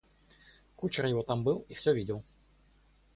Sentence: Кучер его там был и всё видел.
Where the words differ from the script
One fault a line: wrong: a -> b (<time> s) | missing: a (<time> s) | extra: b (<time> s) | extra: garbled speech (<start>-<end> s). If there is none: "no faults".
no faults